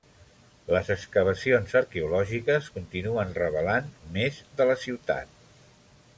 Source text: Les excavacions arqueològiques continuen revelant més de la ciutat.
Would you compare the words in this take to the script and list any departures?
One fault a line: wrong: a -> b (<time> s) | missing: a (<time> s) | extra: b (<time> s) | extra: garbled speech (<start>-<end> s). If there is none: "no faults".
no faults